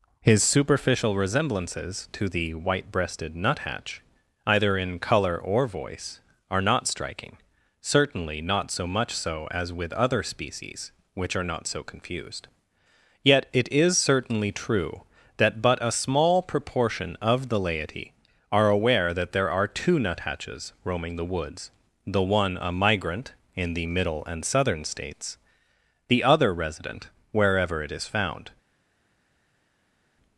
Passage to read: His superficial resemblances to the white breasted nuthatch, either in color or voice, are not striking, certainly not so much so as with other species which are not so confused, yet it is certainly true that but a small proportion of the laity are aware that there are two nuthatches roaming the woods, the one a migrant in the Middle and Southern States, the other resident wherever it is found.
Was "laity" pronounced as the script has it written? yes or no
yes